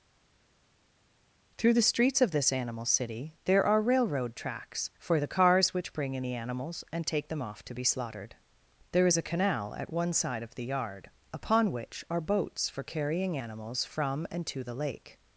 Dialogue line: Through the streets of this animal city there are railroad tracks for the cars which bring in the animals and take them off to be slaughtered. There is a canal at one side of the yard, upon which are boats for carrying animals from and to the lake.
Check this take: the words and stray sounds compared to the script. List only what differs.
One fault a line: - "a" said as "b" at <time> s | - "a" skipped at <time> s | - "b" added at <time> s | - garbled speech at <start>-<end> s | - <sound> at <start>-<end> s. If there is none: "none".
none